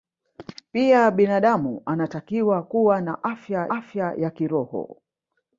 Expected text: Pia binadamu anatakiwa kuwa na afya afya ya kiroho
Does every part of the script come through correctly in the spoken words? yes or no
yes